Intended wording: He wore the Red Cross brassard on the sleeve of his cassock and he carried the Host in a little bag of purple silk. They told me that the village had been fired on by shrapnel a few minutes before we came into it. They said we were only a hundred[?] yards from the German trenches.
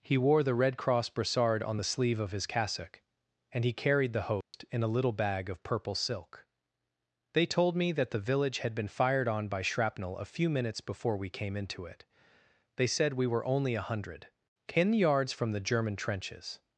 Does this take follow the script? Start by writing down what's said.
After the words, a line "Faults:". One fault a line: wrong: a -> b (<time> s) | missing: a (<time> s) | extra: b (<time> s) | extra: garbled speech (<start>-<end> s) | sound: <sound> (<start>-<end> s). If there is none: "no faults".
He wore the Red Cross brassard on the sleeve of his cassock and he carried the Host in a little bag of purple silk. They told me that the village had been fired on by shrapnel a few minutes before we came into it. They said we were only a hundred[?] ten yards from the German trenches.
Faults:
sound: dropout (4.4-4.5 s)
extra: ten (14.7 s)